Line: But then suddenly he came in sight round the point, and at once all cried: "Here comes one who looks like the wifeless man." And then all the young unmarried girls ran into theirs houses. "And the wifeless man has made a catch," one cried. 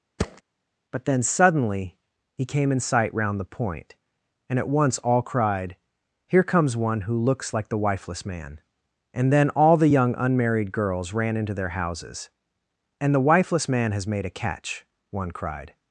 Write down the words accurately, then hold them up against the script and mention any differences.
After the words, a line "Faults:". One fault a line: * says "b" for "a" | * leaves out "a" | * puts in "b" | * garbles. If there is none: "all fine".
But then suddenly he came in sight round the point, and at once all cried: "Here comes one who looks like the wifeless man." And then all the young unmarried girls ran into their houses. "And the wifeless man has made a catch," one cried.
Faults:
* says "their" for "theirs"